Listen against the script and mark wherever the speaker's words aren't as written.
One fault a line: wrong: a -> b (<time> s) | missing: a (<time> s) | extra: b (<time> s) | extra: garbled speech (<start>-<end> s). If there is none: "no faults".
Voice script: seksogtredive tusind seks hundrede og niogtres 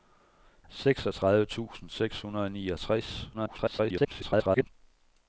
extra: garbled speech (3.3-4.7 s)